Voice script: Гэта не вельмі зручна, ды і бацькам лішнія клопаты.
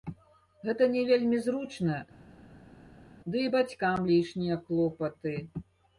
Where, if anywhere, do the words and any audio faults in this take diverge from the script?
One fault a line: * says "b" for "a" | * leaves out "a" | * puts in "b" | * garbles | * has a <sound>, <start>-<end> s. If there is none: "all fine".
all fine